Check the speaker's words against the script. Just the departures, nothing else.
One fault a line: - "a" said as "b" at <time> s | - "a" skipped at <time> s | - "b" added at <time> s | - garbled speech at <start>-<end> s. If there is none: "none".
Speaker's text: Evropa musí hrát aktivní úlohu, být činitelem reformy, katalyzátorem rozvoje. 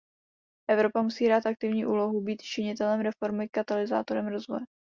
none